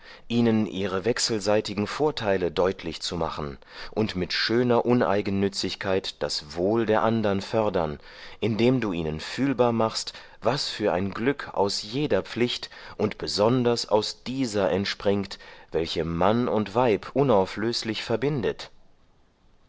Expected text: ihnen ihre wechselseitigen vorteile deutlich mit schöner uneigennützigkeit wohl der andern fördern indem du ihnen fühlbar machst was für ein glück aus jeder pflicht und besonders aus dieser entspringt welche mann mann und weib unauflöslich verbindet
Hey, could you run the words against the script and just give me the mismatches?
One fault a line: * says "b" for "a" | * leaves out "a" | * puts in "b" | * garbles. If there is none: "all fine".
* puts in "zu machen und"
* puts in "das"
* leaves out "mann"